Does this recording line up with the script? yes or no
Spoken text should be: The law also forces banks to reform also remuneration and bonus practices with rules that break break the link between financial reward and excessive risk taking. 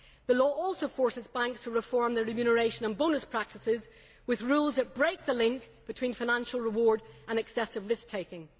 no